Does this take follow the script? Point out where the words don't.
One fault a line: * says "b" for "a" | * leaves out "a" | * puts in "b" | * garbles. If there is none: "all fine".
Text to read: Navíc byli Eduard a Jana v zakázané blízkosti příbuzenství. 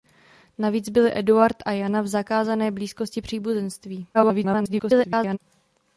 * garbles